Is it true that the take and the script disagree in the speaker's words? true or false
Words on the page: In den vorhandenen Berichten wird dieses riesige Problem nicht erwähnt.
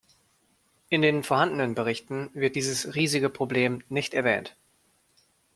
false